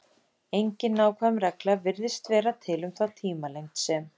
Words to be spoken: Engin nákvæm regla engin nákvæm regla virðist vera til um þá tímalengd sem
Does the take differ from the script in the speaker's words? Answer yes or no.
yes